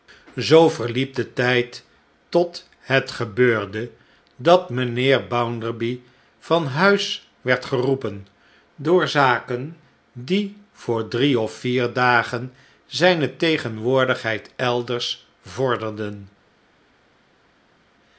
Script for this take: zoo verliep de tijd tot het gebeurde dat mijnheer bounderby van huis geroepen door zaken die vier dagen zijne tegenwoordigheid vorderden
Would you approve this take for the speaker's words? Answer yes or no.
no